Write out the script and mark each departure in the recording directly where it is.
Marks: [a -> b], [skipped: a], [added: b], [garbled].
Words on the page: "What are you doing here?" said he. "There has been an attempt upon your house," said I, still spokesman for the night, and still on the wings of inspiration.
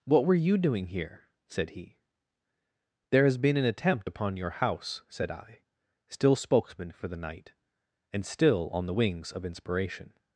"What [are -> were] you doing here?" said he. "There has been an attempt upon your house," said I, still spokesman for the night, and still on the wings of inspiration.